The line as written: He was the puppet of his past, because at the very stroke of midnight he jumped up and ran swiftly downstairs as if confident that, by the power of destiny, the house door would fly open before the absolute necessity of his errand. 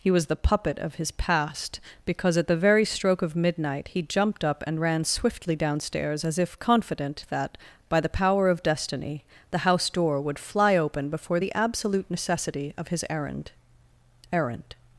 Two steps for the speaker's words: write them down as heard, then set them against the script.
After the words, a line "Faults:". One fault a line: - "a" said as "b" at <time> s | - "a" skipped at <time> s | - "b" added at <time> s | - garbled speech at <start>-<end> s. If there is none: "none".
He was the puppet of his past, because at the very stroke of midnight he jumped up and ran swiftly downstairs as if confident that, by the power of destiny, the house door would fly open before the absolute necessity of his errand errand.
Faults:
- "errand" added at 14.3 s